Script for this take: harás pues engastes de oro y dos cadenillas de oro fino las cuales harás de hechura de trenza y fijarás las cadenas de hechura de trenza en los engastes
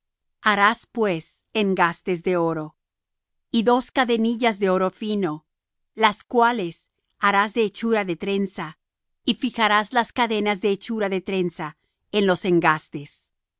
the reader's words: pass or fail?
pass